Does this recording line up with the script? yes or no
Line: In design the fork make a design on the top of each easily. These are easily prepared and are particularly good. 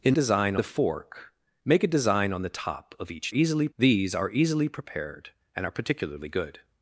yes